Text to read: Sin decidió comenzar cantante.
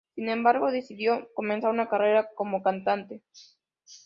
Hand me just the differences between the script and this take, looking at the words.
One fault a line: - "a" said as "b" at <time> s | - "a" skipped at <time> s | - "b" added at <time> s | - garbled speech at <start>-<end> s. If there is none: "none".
- "embargo" added at 0.3 s
- "una carrera como" added at 1.7 s